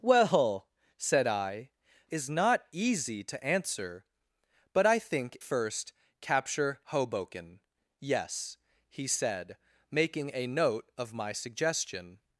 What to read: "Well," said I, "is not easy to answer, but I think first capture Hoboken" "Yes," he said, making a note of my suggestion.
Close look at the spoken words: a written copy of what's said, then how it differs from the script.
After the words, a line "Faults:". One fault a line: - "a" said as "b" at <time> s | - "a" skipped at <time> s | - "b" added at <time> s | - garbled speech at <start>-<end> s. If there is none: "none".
"Well," said I, "is not easy to answer, but I think first capture Hoboken" "Yes," he said, making a note of my suggestion.
Faults:
none